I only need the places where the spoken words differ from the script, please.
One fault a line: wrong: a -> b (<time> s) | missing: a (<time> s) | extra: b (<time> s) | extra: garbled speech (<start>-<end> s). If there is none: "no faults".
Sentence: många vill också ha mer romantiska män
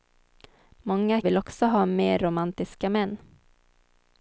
no faults